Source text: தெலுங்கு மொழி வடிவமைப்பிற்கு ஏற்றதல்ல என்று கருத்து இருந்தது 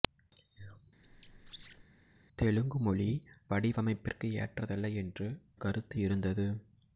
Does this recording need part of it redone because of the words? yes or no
no